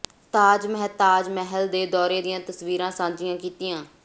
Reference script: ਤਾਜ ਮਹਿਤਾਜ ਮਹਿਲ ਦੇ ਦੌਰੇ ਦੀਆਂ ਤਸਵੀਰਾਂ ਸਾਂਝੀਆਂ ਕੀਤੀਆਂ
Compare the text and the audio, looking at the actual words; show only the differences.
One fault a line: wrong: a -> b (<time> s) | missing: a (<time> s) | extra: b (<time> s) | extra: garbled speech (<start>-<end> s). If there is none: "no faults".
no faults